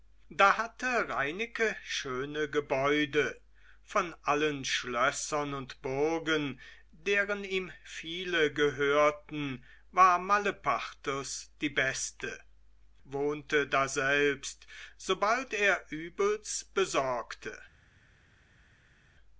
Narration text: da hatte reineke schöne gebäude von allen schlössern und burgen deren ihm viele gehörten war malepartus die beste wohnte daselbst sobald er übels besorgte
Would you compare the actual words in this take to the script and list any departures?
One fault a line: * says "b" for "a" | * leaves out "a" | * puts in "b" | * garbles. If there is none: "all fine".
all fine